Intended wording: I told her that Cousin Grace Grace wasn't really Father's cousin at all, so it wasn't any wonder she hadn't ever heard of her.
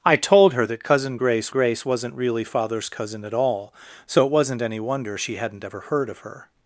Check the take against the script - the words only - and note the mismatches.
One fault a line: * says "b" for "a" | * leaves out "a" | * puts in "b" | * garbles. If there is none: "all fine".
all fine